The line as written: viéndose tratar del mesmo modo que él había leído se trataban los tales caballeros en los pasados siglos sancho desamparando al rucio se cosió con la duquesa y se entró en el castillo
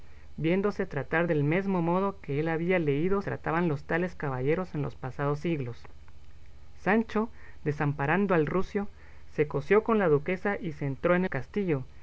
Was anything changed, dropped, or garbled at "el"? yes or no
yes